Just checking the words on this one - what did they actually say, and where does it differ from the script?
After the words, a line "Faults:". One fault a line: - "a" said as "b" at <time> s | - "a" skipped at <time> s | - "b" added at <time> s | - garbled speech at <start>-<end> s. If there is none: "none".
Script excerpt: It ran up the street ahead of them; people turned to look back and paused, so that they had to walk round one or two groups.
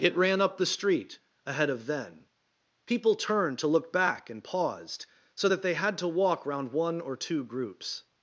It ran up the street ahead of then; people turned to look back and paused, so that they had to walk round one or two groups.
Faults:
- "them" said as "then" at 1.9 s